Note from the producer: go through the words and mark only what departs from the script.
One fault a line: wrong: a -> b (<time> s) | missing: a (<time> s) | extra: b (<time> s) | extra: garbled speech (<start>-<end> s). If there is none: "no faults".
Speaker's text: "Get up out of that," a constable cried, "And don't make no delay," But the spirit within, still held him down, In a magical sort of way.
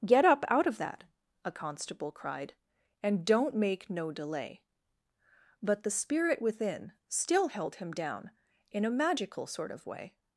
no faults